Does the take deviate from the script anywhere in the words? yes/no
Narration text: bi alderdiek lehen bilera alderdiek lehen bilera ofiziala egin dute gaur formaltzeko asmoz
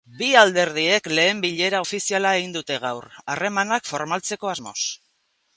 yes